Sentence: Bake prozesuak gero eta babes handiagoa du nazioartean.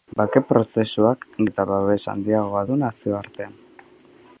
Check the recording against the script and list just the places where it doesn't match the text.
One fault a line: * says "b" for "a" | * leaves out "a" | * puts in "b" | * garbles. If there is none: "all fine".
* leaves out "gero"